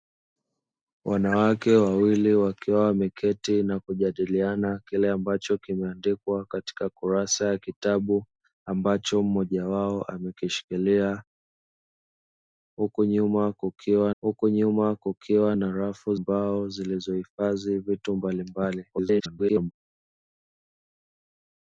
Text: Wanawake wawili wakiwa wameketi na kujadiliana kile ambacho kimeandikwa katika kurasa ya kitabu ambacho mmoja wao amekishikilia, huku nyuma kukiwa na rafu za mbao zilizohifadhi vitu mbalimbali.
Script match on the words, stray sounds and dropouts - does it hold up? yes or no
no